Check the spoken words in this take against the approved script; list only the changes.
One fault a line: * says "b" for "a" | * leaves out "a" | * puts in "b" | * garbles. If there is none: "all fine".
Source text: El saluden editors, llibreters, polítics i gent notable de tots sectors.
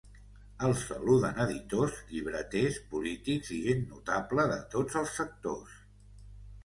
* puts in "els"